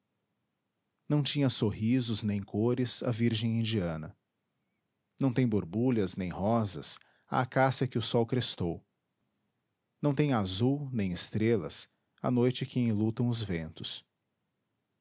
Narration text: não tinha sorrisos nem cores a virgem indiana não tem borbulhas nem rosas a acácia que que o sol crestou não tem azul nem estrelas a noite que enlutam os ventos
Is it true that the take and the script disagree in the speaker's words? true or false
true